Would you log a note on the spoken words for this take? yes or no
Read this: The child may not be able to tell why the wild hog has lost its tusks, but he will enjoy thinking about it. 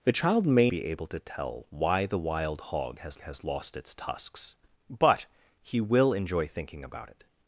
yes